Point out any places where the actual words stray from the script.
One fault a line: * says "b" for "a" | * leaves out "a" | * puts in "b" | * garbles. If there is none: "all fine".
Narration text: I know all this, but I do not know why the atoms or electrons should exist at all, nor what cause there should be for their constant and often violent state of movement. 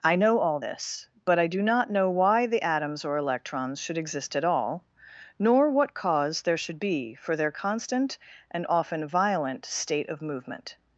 all fine